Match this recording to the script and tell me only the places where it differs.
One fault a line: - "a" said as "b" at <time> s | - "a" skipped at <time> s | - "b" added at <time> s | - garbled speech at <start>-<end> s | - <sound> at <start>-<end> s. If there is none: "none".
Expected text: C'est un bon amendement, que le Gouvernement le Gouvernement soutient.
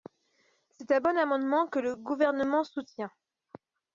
- "le Gouvernement" skipped at 2.6 s